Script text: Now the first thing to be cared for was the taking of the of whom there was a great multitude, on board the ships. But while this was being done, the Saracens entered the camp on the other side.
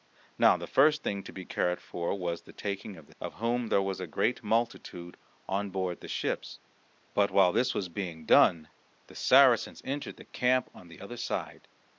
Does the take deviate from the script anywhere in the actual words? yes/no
no